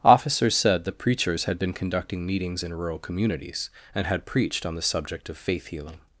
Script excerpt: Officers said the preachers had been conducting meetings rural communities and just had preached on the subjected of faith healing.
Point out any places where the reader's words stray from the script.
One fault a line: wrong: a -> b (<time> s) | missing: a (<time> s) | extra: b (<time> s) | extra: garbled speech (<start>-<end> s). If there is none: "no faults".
extra: in (2.6 s)
missing: just (4.1 s)
wrong: subjected -> subject (4.8 s)